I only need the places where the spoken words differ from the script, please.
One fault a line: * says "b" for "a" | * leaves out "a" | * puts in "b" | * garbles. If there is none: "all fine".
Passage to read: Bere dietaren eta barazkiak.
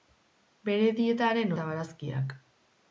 all fine